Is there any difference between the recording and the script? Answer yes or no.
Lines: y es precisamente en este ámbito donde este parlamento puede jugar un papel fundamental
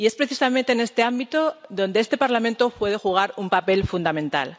no